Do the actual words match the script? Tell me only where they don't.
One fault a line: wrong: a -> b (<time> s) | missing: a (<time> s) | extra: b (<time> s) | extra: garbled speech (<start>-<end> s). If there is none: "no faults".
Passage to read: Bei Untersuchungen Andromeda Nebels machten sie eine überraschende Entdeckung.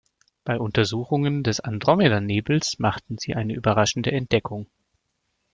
extra: des (1.4 s)